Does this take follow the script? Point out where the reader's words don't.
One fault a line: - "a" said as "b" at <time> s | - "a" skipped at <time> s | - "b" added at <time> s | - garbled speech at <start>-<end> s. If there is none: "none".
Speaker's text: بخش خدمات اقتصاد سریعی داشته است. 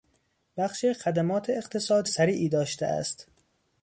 none